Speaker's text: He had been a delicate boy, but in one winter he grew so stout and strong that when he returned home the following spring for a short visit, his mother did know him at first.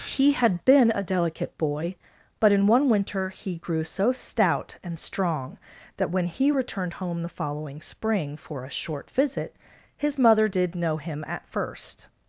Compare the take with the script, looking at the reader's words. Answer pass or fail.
pass